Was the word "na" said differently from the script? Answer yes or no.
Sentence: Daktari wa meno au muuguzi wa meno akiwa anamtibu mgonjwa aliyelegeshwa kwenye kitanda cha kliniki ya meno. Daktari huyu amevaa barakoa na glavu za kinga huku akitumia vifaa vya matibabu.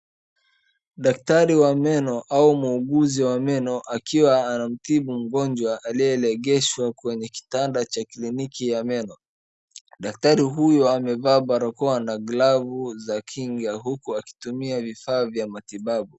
no